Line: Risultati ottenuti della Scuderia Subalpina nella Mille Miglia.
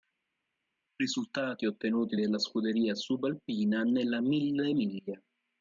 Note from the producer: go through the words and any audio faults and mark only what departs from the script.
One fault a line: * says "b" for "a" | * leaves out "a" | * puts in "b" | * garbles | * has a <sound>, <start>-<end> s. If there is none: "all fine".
all fine